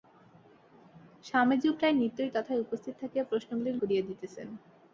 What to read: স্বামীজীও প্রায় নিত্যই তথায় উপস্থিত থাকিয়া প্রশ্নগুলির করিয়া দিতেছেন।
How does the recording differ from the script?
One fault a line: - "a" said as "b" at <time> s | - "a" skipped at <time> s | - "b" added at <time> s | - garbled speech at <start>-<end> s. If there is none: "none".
none